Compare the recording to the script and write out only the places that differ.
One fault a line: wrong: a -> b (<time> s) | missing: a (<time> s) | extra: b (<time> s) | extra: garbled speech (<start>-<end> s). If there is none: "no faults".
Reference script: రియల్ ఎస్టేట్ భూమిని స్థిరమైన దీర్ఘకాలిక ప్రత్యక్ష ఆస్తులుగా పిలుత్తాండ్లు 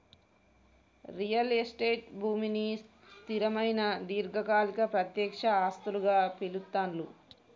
no faults